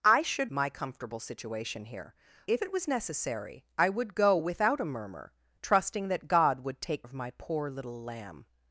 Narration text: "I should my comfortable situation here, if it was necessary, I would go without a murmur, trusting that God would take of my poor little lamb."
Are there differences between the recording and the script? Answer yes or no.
no